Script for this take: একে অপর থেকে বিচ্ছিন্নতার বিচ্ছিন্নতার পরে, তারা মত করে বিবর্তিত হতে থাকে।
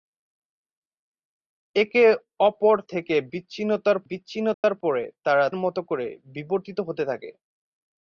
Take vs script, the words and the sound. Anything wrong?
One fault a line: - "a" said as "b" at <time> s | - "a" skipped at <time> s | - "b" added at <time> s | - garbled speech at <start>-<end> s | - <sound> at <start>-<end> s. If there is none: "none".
- dropout at 4.5-4.6 s